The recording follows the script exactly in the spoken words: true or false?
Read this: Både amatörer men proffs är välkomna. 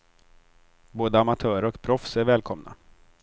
false